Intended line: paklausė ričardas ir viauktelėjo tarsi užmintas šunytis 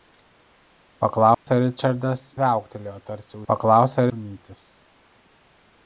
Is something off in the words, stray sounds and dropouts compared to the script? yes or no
yes